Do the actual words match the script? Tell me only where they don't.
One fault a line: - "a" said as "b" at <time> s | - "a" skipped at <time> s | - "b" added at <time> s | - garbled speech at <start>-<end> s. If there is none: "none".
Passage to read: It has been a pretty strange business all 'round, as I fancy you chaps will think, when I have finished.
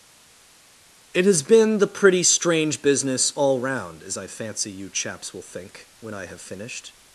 - "a" said as "the" at 1.8 s